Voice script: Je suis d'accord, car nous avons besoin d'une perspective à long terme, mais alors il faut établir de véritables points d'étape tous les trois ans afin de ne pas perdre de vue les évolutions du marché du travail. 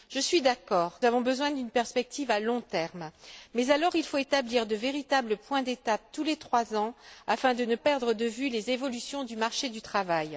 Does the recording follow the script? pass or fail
fail